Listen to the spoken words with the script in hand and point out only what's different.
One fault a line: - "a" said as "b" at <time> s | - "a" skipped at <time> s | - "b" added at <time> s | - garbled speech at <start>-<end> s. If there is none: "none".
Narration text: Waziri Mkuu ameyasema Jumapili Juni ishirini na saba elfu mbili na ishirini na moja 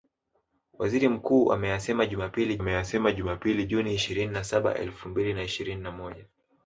- "ameyasema Jumapili" added at 2.6 s